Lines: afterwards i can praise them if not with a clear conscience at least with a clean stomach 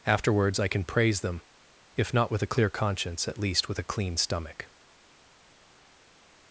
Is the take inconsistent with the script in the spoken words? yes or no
no